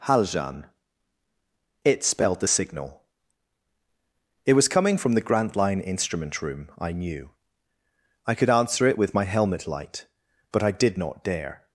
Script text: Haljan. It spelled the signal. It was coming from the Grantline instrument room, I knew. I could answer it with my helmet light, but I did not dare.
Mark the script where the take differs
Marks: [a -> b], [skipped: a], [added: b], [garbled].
Haljan. It spelled the signal. It was coming from the Grantline instrument room, I knew. I could answer it with my helmet light, but I did not dare.